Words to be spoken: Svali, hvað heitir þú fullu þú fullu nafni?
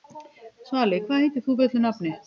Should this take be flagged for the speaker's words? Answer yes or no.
yes